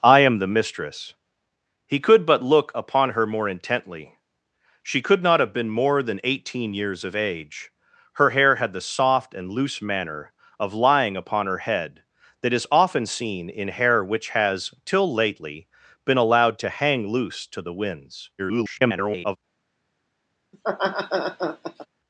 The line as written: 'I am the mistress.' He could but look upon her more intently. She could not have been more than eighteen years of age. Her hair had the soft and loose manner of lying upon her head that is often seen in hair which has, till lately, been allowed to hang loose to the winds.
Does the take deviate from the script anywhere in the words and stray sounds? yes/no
yes